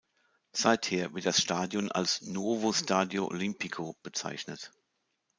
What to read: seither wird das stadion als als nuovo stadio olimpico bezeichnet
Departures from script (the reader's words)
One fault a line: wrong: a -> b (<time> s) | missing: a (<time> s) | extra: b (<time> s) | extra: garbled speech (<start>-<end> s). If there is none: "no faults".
missing: als (2.2 s)